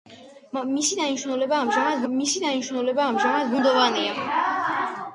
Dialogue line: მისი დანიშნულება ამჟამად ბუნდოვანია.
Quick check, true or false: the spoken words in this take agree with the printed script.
false